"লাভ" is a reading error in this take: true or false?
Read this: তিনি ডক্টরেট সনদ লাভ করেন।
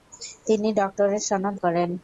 true